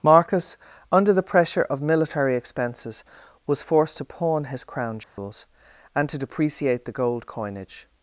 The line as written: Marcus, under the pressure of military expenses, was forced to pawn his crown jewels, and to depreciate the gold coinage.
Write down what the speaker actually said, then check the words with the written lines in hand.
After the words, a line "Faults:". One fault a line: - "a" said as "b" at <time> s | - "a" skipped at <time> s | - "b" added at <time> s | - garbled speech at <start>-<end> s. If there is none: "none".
Marcus, under the pressure of military expenses, was forced to pawn his crown jewels, and to depreciate the gold coinage.
Faults:
none